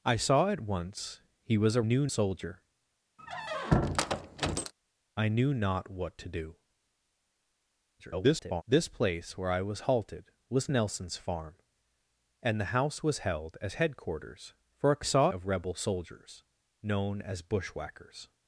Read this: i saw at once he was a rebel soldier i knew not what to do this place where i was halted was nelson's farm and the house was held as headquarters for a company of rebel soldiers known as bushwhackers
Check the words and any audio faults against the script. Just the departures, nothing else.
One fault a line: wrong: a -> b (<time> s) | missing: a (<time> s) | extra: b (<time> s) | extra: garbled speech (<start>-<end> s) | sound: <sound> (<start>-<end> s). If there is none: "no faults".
wrong: rebel -> knew (1.8 s)
sound: squeak (3.2-4.7 s)
extra: garbled speech (8.0-8.6 s)
wrong: company -> saw (15.0 s)